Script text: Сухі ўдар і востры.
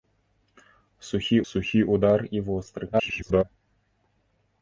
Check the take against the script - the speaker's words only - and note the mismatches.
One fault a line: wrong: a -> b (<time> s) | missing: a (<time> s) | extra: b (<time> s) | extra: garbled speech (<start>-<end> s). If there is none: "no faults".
extra: сухі (1.5 s)
extra: garbled speech (2.9-3.4 s)